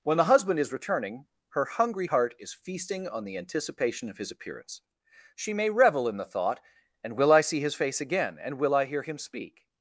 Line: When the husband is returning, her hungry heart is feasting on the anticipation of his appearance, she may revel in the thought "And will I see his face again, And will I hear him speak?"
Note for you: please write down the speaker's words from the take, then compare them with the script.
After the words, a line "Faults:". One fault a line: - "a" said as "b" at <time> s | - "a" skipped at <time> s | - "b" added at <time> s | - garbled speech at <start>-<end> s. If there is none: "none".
When the husband is returning, her hungry heart is feasting on the anticipation of his appearance, she may revel in the thought "And will I see his face again, And will I hear him speak?"
Faults:
none